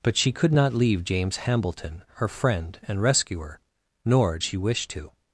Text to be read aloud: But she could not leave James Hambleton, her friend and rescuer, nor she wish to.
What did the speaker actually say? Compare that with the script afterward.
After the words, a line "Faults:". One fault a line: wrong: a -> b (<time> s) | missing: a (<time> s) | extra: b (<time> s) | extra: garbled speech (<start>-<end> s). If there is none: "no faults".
But she could not leave James Hambleton, her friend and rescuer, nor she wish to.
Faults:
no faults